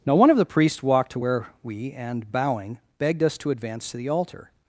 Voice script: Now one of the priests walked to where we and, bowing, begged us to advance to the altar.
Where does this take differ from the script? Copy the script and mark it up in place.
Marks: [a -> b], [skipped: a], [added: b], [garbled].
Now one of the priests walked to where we and, bowing, begged us to advance to the altar.